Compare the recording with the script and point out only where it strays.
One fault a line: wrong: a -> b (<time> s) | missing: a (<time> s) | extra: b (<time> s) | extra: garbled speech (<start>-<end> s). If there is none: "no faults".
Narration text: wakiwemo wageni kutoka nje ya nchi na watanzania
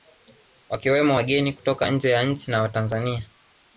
no faults